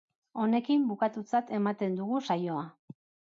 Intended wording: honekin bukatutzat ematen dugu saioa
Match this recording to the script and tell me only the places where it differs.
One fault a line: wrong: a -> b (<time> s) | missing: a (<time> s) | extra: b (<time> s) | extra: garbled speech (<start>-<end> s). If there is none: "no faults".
no faults